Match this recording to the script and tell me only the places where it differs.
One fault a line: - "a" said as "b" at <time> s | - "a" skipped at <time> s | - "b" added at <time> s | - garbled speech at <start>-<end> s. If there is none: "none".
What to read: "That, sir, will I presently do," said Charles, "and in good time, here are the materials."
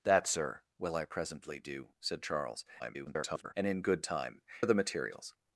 - garbled speech at 2.8-3.5 s
- "here" skipped at 4.4 s